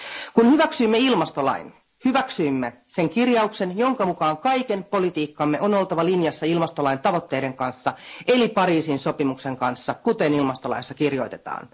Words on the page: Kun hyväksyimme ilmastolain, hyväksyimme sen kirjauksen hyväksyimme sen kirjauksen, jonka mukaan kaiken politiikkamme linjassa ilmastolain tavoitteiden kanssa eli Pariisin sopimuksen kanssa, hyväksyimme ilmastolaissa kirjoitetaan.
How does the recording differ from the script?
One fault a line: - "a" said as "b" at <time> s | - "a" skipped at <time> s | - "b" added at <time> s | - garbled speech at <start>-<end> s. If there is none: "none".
- "hyväksyimme sen kirjauksen" skipped at 3.8 s
- "on oltava" added at 5.6 s
- "hyväksyimme" said as "kuten" at 9.9 s